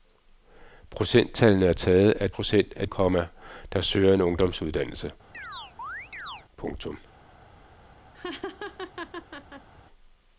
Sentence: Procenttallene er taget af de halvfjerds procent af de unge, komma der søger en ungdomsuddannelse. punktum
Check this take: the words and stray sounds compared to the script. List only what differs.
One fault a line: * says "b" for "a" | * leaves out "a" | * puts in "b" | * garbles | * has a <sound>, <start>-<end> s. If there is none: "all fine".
* leaves out "de halvfjerds"
* leaves out "de unge"
* has a chirp, 5.3-6.4 s
* has a laugh, 8.1-9.7 s